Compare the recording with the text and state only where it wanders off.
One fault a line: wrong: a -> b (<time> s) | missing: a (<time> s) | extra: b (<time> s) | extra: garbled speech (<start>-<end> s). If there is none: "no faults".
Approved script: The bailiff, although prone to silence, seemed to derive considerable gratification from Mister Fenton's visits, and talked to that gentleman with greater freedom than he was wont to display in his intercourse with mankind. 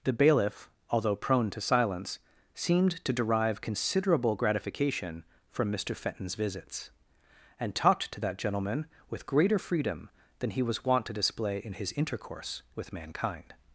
no faults